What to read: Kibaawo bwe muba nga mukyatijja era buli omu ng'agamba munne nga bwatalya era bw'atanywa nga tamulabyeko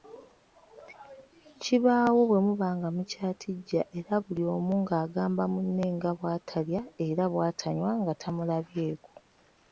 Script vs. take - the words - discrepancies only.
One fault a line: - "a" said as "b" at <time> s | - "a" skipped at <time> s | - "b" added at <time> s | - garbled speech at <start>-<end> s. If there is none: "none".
none